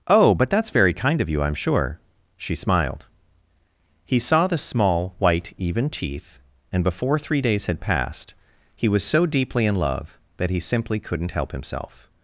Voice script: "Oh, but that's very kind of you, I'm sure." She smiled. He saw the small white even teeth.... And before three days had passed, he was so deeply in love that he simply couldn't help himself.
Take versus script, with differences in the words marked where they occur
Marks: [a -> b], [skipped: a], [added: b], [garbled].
"Oh, but that's very kind of you, I'm sure." She smiled. He saw the small white even teeth.... And before three days had passed, he was so deeply in love that he simply couldn't help himself.